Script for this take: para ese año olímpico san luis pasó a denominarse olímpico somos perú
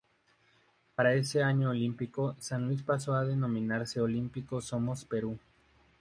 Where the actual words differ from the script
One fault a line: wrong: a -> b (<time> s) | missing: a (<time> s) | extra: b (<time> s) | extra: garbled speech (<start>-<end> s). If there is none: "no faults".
no faults